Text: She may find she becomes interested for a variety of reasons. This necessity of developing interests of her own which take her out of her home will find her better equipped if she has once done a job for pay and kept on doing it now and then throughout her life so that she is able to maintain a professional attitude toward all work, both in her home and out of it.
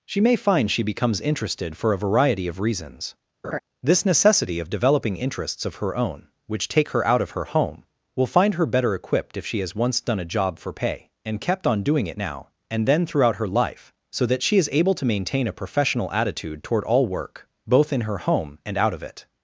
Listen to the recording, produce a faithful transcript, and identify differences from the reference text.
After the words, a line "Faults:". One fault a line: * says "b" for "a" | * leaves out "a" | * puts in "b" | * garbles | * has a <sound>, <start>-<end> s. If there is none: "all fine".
She may find she becomes interested for a variety of reasons. This necessity of developing interests of her own which take her out of her home will find her better equipped if she has once done a job for pay and kept on doing it now and then throughout her life so that she is able to maintain a professional attitude toward all work, both in her home and out of it.
Faults:
* has a laugh, 3.4-3.6 s